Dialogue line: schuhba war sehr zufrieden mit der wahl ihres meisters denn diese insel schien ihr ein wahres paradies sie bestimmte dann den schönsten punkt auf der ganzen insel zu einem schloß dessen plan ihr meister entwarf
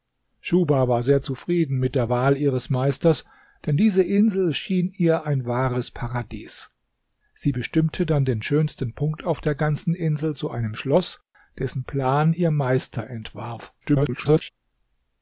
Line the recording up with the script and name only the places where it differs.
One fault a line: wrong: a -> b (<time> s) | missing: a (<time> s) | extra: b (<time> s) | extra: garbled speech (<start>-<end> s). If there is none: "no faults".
extra: garbled speech (13.8-14.5 s)